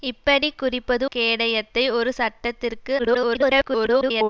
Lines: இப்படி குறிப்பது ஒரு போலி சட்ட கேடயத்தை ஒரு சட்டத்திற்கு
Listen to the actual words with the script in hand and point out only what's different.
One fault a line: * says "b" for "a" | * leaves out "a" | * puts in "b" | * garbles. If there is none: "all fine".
* leaves out "ஒரு போலி சட்ட"
* garbles